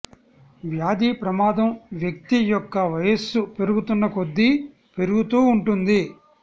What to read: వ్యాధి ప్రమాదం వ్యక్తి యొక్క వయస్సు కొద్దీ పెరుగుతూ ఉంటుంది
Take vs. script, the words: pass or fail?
fail